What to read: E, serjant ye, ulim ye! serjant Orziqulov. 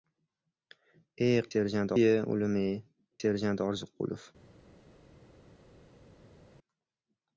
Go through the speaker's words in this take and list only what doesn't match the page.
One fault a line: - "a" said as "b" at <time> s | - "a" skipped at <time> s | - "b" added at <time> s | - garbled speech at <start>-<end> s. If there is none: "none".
none